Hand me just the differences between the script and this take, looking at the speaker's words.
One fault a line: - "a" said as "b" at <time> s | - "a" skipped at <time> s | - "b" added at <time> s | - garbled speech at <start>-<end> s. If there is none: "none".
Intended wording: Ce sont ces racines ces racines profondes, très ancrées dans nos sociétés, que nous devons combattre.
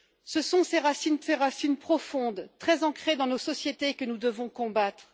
none